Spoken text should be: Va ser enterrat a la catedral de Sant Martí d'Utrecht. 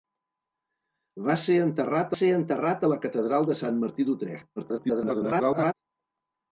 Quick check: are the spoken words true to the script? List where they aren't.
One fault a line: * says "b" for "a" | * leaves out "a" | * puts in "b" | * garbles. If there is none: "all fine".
* puts in "ser enterrat"
* garbles